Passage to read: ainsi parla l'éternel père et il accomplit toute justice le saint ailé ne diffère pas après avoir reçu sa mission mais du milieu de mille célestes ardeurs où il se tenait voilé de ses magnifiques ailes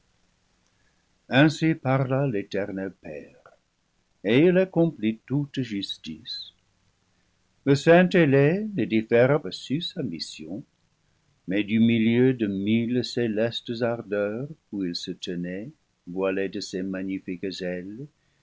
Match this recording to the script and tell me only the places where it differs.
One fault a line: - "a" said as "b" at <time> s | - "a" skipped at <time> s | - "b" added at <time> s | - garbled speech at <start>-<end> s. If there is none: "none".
- "pas après avoir" skipped at 9.4 s